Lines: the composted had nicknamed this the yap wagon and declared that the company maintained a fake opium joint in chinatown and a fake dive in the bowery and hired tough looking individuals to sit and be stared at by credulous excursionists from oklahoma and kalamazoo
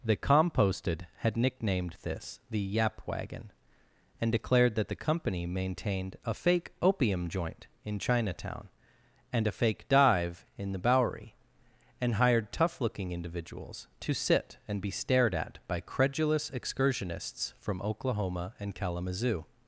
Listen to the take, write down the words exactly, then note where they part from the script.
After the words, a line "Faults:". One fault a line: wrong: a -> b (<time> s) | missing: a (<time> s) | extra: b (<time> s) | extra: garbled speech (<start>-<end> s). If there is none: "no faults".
the composted had nicknamed this the yap wagon and declared that the company maintained a fake opium joint in chinatown and a fake dive in the bowery and hired tough looking individuals to sit and be stared at by credulous excursionists from oklahoma and kalamazoo
Faults:
no faults